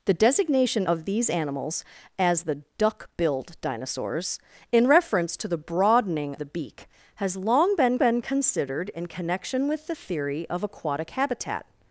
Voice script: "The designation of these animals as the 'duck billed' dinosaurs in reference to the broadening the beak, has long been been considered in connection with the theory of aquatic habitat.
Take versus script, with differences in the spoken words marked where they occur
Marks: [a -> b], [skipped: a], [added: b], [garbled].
"The designation of these animals as the 'duck billed' dinosaurs in reference to the broadening the beak, has long been been considered in connection with the theory of aquatic habitat.